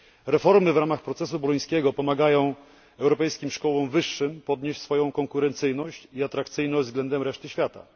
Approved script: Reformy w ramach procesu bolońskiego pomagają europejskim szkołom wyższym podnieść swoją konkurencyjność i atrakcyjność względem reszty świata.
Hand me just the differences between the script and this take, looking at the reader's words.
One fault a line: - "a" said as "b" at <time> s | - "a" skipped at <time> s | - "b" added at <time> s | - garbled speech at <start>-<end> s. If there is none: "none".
none